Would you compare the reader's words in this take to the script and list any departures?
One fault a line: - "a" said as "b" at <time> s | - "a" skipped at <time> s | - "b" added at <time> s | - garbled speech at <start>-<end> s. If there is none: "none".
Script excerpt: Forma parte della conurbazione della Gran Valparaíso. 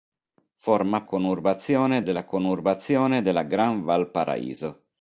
- "parte" said as "conurbazione" at 1.0 s